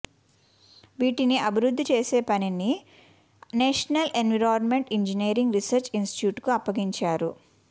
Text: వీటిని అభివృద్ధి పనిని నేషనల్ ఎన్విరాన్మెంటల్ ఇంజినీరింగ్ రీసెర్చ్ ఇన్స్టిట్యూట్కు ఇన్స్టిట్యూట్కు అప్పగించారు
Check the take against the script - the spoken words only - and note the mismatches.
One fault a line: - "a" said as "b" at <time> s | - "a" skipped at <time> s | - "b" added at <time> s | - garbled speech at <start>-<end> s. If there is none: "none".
- "చేసే" added at 1.9 s
- "ఇన్స్టిట్యూట్కు" skipped at 6.5 s